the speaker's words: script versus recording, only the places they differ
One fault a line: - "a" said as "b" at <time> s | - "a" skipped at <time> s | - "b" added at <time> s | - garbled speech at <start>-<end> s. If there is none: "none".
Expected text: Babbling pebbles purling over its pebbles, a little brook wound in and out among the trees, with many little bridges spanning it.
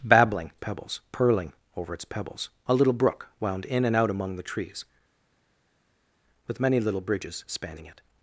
none